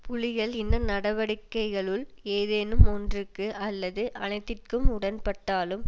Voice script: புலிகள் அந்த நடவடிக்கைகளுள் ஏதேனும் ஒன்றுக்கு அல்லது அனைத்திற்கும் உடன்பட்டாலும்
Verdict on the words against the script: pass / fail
fail